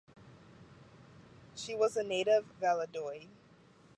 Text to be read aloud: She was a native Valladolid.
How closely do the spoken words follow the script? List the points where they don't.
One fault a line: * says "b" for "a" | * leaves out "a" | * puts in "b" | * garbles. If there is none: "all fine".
all fine